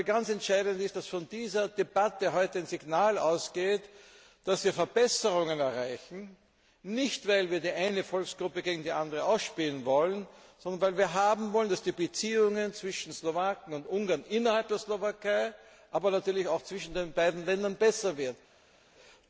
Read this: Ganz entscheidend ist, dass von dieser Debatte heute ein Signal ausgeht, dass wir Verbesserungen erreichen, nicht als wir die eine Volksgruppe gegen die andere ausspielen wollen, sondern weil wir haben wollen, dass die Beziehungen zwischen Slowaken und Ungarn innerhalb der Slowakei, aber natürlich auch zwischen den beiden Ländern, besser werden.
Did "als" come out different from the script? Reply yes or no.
yes